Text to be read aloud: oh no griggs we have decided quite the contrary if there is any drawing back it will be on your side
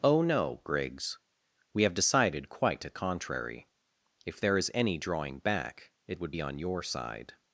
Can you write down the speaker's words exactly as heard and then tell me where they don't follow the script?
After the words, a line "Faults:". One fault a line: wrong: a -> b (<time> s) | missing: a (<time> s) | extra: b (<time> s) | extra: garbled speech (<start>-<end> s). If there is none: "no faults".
oh no griggs we have decided quite a contrary if there is any drawing back it would be on your side
Faults:
wrong: the -> a (2.9 s)
wrong: will -> would (6.2 s)